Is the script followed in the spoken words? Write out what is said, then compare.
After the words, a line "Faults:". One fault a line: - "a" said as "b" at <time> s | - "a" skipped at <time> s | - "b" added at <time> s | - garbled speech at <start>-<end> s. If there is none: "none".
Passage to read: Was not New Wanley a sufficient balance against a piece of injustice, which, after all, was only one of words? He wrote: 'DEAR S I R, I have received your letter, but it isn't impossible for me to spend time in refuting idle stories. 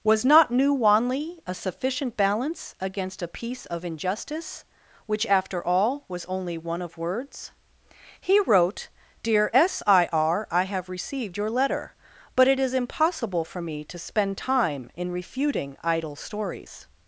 Was not New Wanley a sufficient balance against a piece of injustice, which, after all, was only one of words? He wrote: 'DEAR S I R, I have received your letter, but it is impossible for me to spend time in refuting idle stories.
Faults:
- "isn't" said as "is" at 12.6 s